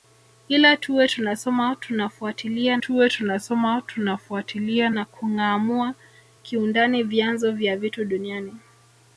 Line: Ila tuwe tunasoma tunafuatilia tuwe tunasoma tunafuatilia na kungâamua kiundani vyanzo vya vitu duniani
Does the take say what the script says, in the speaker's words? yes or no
yes